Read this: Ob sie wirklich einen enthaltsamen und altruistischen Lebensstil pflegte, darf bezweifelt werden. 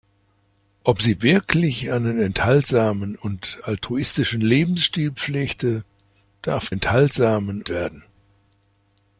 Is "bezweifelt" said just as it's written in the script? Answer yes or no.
no